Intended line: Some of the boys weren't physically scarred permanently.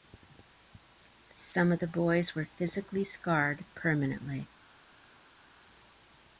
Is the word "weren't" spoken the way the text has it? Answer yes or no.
no